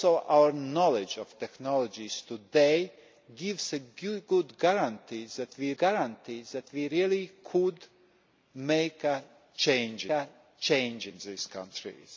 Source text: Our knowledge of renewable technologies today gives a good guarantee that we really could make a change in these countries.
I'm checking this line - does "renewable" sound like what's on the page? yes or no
no